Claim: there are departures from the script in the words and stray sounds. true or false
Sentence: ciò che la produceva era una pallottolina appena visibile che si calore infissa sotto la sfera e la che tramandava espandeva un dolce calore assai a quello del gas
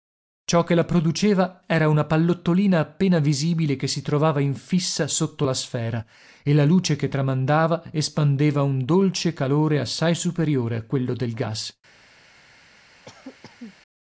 true